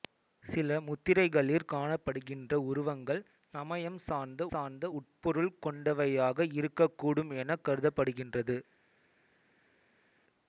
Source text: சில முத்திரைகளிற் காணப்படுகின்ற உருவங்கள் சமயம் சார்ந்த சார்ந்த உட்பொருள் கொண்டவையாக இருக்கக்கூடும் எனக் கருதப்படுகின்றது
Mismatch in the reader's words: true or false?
false